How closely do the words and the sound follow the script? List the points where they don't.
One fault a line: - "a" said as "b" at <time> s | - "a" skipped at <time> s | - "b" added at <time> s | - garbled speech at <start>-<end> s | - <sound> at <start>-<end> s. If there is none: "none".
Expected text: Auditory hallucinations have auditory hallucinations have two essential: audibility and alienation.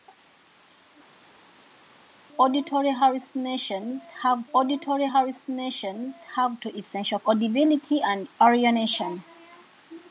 none